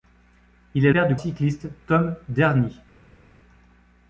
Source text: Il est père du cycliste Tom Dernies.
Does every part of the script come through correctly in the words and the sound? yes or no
yes